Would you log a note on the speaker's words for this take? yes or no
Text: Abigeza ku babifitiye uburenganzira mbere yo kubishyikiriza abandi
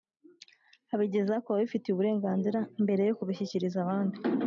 no